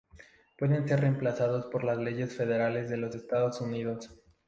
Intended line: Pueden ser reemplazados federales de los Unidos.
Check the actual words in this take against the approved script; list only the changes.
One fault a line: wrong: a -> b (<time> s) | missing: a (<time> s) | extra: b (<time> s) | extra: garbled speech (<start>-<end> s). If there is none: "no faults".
extra: por las leyes (1.7 s)
extra: Estados (3.1 s)